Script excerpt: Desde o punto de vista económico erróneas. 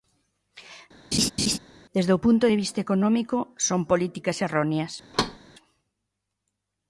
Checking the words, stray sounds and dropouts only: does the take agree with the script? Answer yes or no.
no